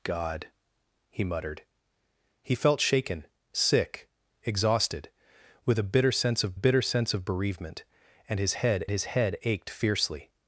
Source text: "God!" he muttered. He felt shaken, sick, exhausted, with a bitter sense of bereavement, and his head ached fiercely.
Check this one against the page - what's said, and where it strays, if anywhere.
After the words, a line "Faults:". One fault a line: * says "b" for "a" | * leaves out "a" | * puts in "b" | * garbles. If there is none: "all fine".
"God!" he muttered. He felt shaken, sick, exhausted, with a bitter sense of bitter sense of bereavement, and his head his head ached fiercely.
Faults:
* puts in "bitter sense of"
* puts in "his head"